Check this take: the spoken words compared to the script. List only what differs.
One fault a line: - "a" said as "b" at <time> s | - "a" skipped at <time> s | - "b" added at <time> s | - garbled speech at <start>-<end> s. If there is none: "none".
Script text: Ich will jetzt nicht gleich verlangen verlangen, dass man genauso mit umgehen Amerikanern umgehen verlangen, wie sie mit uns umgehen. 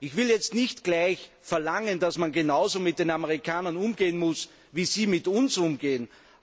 - "verlangen" skipped at 2.0 s
- "umgehen" said as "den" at 3.0 s
- "verlangen" said as "muss" at 4.2 s